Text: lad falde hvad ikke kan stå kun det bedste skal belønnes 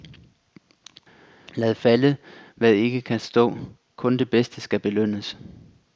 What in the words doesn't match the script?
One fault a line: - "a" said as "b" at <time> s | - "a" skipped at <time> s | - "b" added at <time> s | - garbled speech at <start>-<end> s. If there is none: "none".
none